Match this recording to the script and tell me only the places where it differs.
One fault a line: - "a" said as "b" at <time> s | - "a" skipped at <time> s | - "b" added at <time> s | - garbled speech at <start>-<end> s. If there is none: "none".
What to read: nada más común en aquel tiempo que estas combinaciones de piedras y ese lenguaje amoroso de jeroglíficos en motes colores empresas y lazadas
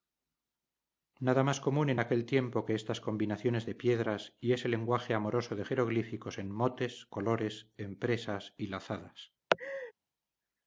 none